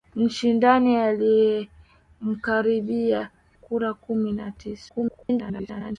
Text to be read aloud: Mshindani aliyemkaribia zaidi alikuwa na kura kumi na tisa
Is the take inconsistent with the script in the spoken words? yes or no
yes